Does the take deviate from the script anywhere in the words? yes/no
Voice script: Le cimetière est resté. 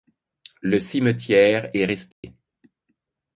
no